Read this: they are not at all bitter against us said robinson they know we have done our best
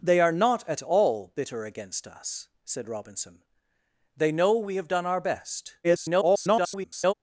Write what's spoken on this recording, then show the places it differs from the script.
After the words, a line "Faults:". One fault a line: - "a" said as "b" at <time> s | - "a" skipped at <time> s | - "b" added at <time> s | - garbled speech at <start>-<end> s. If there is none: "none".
they are not at all bitter against us said robinson they know we have done our best [garbled]
Faults:
- garbled speech at 5.8-7.1 s